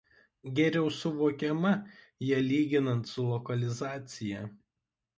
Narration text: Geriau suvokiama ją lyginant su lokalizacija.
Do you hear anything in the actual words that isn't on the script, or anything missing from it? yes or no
no